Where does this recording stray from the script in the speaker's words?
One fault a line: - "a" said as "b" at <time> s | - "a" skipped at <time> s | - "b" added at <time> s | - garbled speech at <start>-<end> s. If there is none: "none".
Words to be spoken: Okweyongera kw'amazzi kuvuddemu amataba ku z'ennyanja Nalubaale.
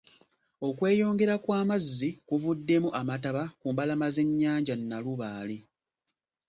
- "mbalama" added at 3.7 s